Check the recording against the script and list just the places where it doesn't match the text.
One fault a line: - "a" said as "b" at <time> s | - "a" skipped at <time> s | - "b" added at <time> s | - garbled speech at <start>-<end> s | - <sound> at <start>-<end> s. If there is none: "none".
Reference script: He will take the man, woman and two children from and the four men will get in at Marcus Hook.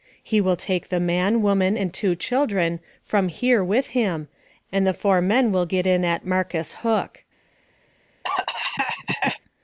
- "here with him" added at 3.3 s
- cough at 8.2-9.4 s